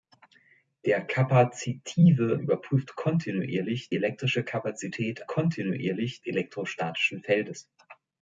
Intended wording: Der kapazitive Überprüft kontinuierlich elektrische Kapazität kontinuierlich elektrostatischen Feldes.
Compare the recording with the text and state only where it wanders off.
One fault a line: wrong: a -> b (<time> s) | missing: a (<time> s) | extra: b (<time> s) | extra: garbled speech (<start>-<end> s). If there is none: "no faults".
no faults